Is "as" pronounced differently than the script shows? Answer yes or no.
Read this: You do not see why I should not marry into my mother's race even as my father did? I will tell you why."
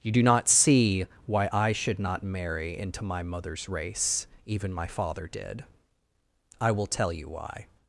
yes